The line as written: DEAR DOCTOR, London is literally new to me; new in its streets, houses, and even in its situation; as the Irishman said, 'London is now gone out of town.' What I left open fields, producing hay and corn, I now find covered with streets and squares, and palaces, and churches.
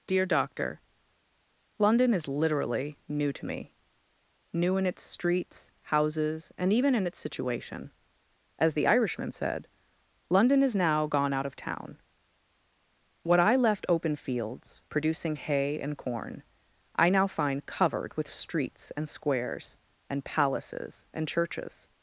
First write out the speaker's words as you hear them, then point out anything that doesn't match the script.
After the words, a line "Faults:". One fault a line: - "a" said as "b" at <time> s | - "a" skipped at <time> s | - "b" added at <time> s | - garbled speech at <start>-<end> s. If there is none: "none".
DEAR DOCTOR, London is literally new to me; new in its streets, houses, and even in its situation; as the Irishman said, 'London is now gone out of town.' What I left open fields, producing hay and corn, I now find covered with streets and squares, and palaces, and churches.
Faults:
none